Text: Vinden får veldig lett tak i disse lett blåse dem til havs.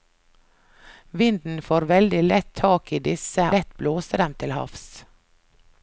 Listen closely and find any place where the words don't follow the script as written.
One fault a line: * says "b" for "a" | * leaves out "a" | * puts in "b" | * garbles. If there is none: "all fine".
all fine